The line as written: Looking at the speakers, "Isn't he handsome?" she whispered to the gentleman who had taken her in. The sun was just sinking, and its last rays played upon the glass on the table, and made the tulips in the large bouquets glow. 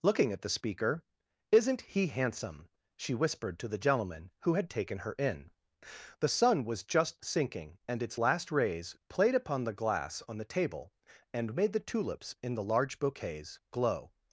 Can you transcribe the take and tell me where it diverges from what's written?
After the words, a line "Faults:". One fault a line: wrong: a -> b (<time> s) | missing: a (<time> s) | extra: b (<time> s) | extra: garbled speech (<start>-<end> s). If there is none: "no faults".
Looking at the speaker, "Isn't he handsome?" she whispered to the gentleman who had taken her in. The sun was just sinking, and its last rays played upon the glass on the table, and made the tulips in the large bouquets glow.
Faults:
wrong: speakers -> speaker (0.5 s)